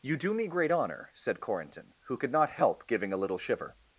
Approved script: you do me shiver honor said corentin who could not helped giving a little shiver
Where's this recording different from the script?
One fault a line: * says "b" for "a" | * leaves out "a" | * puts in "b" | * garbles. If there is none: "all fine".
* says "great" for "shiver"
* says "help" for "helped"